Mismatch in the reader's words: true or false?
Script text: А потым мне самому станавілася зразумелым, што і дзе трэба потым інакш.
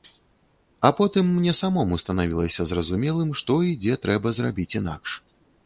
true